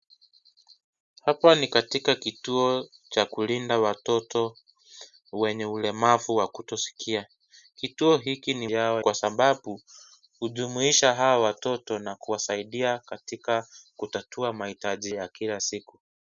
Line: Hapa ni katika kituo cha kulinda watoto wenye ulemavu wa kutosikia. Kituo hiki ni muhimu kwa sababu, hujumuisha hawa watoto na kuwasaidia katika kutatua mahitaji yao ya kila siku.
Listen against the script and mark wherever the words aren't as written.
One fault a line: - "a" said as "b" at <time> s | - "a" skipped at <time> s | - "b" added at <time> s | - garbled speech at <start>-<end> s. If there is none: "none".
- "muhimu" said as "yao" at 8.7 s
- "yao" skipped at 15.1 s